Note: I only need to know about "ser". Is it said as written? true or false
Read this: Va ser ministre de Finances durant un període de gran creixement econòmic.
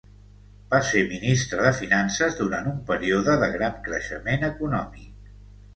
true